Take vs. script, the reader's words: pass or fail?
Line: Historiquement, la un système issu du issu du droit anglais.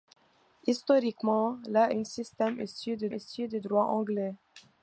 pass